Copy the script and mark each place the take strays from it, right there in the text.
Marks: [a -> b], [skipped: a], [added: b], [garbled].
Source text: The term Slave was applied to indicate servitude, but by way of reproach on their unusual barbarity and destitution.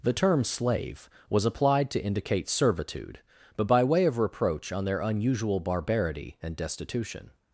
The term Slave was applied to indicate servitude, but by way of reproach on their unusual barbarity and destitution.